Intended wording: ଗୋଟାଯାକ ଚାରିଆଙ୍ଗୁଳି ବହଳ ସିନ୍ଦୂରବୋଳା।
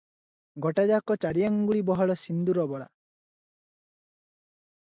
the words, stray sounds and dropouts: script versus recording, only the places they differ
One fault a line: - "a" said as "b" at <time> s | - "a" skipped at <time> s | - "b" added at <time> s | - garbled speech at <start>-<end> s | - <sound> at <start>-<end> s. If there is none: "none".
none